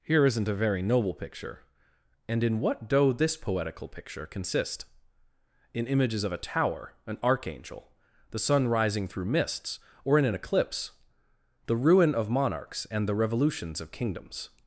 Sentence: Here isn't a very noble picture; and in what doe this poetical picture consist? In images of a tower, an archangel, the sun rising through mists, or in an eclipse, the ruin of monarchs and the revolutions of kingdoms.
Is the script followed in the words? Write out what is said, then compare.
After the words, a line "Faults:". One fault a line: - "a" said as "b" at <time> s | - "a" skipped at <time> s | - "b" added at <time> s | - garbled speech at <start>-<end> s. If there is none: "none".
Here isn't a very noble picture; and in what doe this poetical picture consist? In images of a tower, an archangel, the sun rising through mists, or in an eclipse, the ruin of monarchs and the revolutions of kingdoms.
Faults:
none